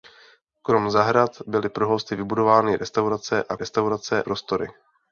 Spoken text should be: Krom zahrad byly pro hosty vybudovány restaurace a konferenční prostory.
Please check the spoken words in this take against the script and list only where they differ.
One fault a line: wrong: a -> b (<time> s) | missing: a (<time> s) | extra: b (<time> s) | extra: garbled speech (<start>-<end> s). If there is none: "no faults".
wrong: konferenční -> restaurace (3.6 s)